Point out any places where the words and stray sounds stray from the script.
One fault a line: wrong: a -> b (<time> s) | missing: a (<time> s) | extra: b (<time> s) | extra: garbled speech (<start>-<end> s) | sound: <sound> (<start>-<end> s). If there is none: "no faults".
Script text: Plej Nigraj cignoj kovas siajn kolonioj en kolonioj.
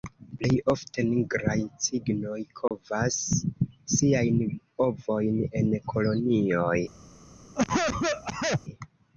extra: ofte (0.7 s)
sound: dropout (2.7-2.7 s)
wrong: kolonioj -> ovojn (4.9 s)
sound: cough (7.6-8.6 s)